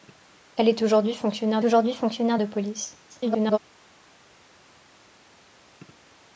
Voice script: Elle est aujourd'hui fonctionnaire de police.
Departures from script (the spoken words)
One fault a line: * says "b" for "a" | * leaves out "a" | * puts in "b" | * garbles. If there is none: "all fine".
* puts in "aujourd'hui fonctionnaire"
* garbles